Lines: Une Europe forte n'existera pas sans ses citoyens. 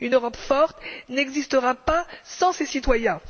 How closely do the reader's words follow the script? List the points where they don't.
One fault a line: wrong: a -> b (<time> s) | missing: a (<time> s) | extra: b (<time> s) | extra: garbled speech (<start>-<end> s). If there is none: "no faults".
no faults